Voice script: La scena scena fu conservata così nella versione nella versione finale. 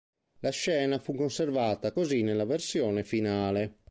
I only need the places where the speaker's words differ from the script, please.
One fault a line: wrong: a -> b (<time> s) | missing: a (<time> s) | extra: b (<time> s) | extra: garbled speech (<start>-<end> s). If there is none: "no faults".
missing: scena (1.0 s)
missing: nella versione (3.0 s)